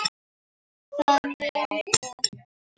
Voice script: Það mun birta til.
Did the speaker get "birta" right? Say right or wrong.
wrong